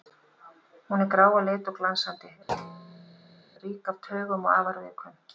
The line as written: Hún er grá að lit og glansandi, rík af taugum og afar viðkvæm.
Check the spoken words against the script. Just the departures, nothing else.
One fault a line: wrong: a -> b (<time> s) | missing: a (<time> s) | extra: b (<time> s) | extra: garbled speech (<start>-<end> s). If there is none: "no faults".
no faults